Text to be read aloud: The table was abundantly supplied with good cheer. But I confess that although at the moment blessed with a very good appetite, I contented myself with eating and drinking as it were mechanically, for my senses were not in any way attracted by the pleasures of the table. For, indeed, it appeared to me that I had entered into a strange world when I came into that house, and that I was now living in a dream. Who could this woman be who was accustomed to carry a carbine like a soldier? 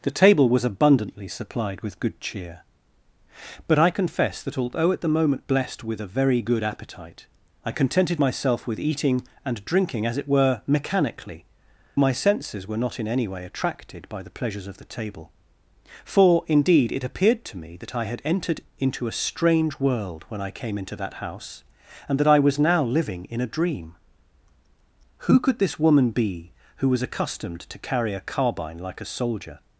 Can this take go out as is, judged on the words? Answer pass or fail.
fail